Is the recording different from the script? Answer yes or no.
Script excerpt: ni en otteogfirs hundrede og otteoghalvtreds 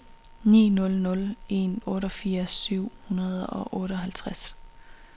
yes